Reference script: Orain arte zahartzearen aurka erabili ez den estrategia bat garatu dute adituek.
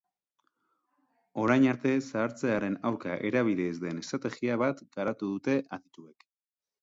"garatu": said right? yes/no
yes